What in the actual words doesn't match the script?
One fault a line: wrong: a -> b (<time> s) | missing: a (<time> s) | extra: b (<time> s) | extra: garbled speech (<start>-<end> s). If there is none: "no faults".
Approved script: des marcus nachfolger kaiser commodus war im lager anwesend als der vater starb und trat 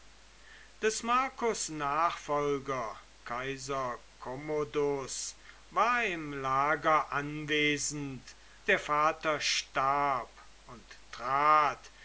missing: als (8.3 s)